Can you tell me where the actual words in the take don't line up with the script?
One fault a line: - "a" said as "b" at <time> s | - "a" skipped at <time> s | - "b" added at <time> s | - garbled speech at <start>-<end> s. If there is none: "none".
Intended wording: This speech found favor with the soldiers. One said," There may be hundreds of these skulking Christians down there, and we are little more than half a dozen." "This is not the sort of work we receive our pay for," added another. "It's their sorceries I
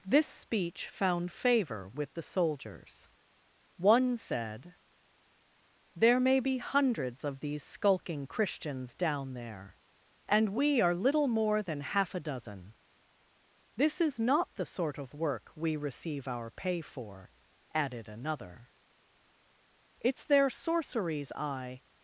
none